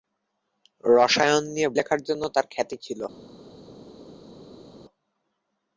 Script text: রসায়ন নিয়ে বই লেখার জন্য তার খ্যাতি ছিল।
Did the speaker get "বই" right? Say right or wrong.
wrong